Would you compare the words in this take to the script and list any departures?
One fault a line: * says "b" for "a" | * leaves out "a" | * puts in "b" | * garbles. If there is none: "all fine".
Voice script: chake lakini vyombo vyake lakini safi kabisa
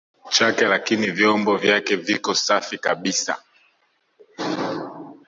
* says "viko" for "lakini"